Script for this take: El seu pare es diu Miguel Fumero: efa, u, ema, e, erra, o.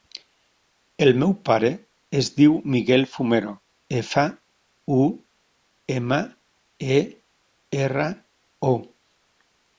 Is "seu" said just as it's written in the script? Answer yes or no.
no